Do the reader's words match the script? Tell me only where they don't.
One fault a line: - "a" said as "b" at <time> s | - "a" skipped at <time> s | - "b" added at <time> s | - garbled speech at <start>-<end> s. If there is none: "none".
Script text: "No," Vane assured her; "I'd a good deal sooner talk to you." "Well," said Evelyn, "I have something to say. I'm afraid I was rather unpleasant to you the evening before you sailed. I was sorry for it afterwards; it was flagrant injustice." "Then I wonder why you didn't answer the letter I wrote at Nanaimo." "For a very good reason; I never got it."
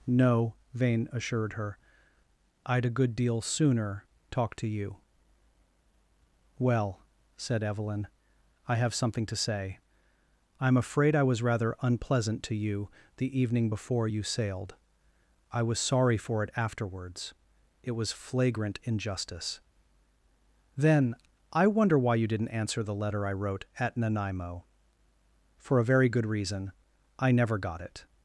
none